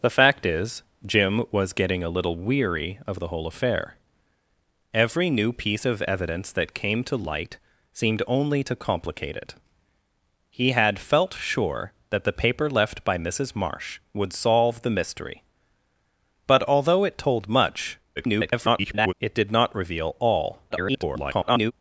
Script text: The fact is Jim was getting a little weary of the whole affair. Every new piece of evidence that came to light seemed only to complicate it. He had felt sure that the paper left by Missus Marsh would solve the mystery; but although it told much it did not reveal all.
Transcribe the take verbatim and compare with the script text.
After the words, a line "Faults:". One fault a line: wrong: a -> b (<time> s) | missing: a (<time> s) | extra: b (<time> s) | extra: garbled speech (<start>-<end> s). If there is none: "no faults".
The fact is Jim was getting a little weary of the whole affair. Every new piece of evidence that came to light seemed only to complicate it. He had felt sure that the paper left by Missus Marsh would solve the mystery; but although it told much [garbled] it did not reveal all. [garbled]
Faults:
extra: garbled speech (18.2-19.1 s)
extra: garbled speech (20.7-21.7 s)